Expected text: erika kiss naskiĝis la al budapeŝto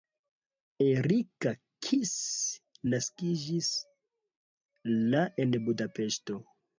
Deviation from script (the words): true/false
true